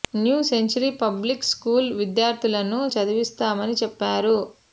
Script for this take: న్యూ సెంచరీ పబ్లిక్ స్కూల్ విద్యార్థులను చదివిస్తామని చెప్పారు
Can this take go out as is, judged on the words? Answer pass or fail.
pass